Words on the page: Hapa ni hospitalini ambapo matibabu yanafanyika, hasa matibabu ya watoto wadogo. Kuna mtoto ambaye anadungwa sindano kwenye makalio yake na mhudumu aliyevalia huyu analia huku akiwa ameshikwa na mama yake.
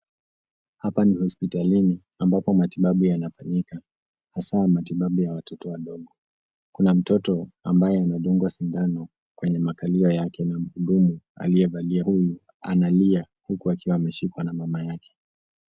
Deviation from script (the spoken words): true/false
false